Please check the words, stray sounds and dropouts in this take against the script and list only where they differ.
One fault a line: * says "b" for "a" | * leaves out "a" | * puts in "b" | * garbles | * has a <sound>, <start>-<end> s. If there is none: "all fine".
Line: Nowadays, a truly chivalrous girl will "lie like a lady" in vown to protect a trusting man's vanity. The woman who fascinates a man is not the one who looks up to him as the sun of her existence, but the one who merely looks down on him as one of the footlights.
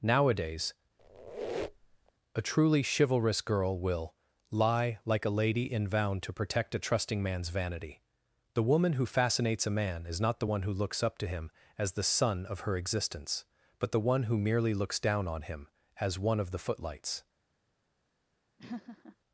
* has a squeak, 1.0-2.1 s
* has a laugh, 18.6-19.2 s